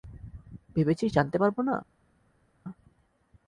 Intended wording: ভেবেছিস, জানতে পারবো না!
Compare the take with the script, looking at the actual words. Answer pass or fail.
pass